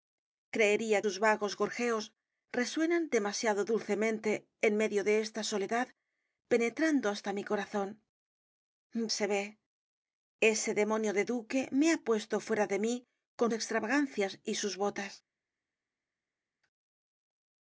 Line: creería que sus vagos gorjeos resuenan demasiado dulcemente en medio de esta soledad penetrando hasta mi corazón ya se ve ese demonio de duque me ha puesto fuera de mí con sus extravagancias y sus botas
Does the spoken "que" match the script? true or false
false